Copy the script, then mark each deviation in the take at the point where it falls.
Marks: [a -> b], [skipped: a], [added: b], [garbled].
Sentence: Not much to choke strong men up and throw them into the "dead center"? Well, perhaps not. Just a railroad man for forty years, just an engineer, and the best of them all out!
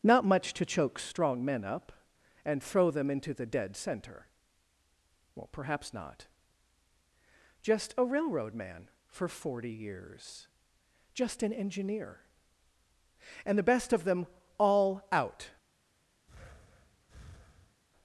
Not much to choke strong men up and throw them into the "dead center"? Well, perhaps not. Just a railroad man for forty years, just an engineer, and the best of them all out!